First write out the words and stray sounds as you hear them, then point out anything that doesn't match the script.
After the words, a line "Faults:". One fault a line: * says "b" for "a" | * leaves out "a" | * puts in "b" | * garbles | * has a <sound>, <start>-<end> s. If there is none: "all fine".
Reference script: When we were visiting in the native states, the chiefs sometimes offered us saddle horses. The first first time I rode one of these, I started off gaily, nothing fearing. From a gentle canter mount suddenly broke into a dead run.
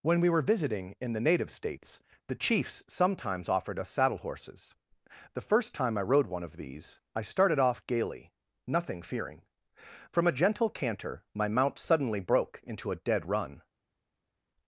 When we were visiting in the native states, the chiefs sometimes offered us saddle horses. The first time I rode one of these, I started off gaily, nothing fearing. From a gentle canter my mount suddenly broke into a dead run.
Faults:
* leaves out "first"
* puts in "my"